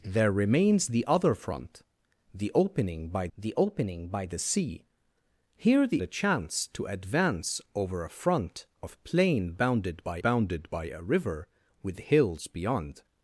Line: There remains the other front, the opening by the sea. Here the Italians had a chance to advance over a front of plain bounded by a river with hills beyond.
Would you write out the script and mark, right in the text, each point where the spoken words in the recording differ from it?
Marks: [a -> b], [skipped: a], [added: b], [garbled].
There remains the other front, the opening by the [added: opening by the] sea. Here the [skipped: Italians had] a chance to advance over a front of plain bounded by [added: bounded by] a river with hills beyond.